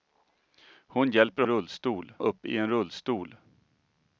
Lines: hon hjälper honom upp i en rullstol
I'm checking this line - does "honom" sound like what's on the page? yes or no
no